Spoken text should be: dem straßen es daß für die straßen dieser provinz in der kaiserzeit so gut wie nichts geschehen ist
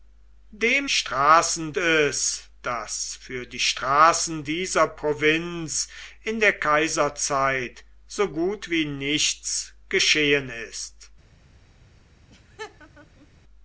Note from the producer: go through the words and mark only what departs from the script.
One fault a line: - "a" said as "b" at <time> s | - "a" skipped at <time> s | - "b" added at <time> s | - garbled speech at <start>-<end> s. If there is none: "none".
none